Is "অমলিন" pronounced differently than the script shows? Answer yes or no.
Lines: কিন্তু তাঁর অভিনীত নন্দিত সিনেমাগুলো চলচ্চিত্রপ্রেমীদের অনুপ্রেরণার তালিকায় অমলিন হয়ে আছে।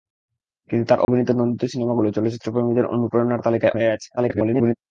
yes